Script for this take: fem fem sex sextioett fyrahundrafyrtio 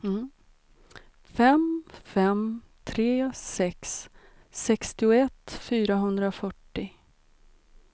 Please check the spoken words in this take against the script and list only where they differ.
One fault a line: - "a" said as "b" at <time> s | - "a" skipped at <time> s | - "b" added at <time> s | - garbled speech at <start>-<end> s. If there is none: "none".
- "tre" added at 2.8 s